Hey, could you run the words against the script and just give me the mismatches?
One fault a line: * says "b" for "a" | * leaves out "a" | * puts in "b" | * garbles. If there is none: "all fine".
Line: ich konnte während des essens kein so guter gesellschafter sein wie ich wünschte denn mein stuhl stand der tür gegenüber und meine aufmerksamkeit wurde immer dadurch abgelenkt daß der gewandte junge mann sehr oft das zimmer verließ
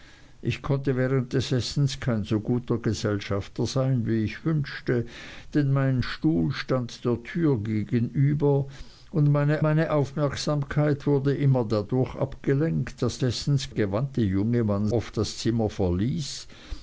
* puts in "meine"
* says "essens" for "der"
* leaves out "sehr"